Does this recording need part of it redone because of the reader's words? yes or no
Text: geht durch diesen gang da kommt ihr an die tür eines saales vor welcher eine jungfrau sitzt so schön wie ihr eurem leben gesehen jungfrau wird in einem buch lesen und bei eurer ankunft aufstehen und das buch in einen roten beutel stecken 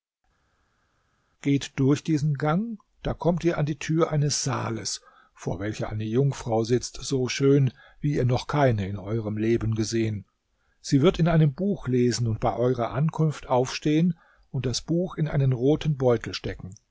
yes